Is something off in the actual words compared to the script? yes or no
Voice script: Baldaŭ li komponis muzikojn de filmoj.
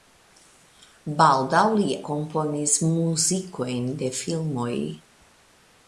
no